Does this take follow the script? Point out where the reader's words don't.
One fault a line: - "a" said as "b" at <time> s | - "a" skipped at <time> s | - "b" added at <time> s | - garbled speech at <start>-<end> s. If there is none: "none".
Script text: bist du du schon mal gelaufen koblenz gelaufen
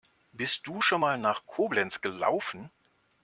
- "du" skipped at 0.8 s
- "gelaufen" said as "nach" at 1.2 s